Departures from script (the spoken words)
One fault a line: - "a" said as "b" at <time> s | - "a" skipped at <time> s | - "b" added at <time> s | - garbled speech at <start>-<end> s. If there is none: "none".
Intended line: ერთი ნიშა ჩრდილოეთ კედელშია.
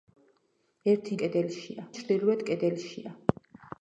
- "ნიშა" said as "კედელშია" at 1.2 s